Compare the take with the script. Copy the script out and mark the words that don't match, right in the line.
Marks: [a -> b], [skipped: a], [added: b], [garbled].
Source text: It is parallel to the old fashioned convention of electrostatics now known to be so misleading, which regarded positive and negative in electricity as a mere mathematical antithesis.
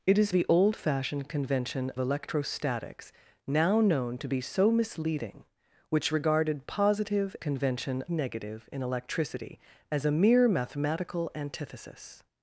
It is [skipped: parallel to] the old fashioned convention [skipped: of] electrostatics now known to be so misleading, which regarded positive [and -> convention] negative in electricity as a mere mathematical antithesis.